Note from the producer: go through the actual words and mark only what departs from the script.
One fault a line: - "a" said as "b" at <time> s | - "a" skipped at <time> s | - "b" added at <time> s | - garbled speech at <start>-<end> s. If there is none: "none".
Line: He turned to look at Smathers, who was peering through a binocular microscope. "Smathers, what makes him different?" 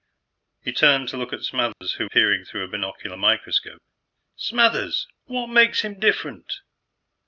- "was" skipped at 2.1 s